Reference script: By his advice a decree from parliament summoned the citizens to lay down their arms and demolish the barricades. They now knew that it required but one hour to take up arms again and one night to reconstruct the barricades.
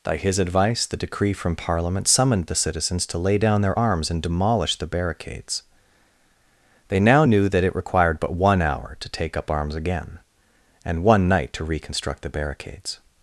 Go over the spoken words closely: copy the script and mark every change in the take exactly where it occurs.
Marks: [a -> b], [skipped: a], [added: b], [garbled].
By his advice [a -> the] decree from parliament summoned the citizens to lay down their arms and demolish the barricades. They now knew that it required but one hour to take up arms again and one night to reconstruct the barricades.